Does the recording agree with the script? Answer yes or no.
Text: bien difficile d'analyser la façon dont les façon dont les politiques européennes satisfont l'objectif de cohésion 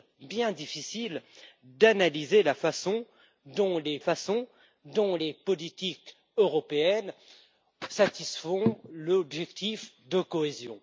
yes